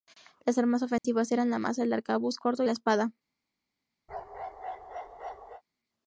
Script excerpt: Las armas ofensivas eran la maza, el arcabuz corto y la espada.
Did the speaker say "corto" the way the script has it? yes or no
yes